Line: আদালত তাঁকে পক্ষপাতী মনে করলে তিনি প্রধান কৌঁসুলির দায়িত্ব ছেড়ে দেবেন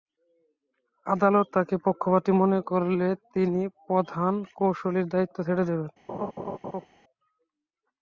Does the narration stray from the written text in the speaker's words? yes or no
no